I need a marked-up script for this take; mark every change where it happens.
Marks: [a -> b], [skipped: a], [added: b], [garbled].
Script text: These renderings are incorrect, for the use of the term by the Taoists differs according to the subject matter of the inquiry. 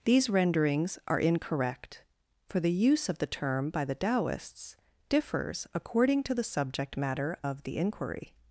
These renderings are incorrect, for the use of the term by the Taoists differs according to the subject matter of the inquiry.